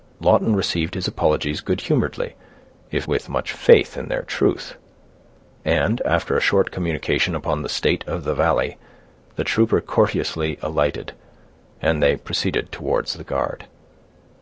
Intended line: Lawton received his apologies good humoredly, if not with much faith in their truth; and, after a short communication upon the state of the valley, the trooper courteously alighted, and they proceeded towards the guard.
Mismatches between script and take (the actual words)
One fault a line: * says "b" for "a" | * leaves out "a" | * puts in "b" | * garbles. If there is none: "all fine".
* leaves out "not"